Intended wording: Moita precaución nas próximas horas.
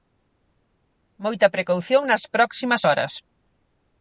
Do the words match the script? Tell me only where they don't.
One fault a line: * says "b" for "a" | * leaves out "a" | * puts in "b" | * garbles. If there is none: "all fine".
all fine